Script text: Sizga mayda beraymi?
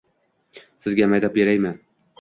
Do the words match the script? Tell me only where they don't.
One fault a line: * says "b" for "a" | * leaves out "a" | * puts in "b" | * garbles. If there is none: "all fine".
all fine